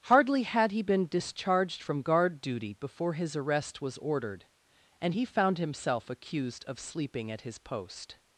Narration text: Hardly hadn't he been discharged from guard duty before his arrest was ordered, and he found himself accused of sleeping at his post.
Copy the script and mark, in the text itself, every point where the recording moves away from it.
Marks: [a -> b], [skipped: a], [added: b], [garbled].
Hardly [hadn't -> had] he been discharged from guard duty before his arrest was ordered, and he found himself accused of sleeping at his post.